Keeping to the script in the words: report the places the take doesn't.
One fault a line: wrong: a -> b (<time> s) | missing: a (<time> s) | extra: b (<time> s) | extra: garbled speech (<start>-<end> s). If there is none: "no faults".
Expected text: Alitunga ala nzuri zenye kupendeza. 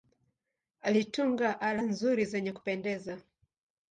no faults